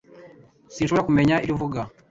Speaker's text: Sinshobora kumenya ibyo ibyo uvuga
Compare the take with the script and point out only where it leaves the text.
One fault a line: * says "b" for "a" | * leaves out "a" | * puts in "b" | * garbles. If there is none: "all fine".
* leaves out "ibyo"